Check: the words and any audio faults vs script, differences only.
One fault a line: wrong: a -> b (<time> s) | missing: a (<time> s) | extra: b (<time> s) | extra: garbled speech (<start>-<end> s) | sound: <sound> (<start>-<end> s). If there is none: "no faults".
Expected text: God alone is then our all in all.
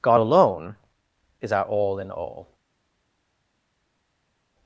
missing: then (1.5 s)